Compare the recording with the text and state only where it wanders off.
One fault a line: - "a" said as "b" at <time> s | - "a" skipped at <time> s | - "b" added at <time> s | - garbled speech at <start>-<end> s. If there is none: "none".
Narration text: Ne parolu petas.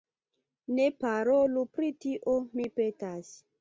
- "pri tio mi" added at 1.8 s